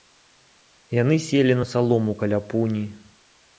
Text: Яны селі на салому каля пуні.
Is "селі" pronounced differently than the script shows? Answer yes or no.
no